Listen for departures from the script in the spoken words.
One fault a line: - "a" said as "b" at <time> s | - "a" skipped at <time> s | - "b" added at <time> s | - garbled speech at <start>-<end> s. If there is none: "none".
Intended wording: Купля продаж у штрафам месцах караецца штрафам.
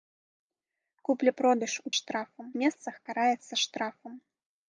none